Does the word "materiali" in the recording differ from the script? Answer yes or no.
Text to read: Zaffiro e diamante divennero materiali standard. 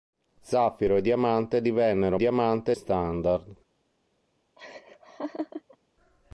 yes